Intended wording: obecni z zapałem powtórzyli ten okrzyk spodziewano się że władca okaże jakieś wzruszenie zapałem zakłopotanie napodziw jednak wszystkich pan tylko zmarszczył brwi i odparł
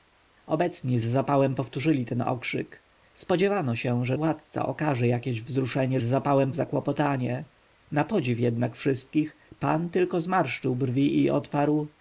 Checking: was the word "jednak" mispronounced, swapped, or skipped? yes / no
no